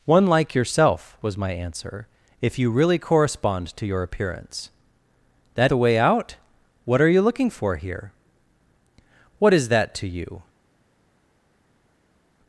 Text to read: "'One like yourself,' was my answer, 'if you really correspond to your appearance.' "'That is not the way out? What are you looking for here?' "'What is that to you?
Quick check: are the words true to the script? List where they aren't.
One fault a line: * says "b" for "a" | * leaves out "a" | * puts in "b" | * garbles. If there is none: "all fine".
* leaves out "is not"